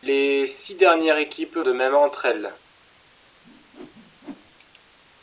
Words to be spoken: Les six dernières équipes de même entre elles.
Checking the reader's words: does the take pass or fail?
pass